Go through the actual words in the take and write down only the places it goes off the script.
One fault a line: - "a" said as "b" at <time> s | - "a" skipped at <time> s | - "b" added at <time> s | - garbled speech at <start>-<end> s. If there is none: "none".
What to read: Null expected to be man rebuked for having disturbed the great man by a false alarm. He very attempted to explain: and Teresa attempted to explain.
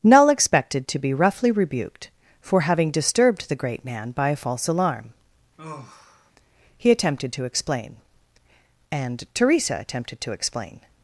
- "man" said as "roughly" at 1.1 s
- "very" skipped at 6.9 s